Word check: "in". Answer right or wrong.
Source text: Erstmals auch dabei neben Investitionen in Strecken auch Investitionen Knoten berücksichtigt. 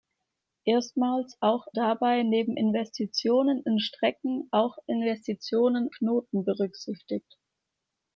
right